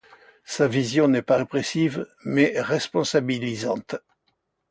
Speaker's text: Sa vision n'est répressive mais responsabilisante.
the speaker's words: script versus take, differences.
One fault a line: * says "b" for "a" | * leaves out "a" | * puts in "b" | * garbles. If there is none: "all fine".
* puts in "pas"